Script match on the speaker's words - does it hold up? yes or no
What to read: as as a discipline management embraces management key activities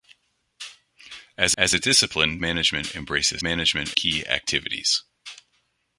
yes